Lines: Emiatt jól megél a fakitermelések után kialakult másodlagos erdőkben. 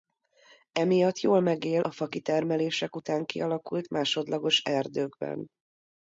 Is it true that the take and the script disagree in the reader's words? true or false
false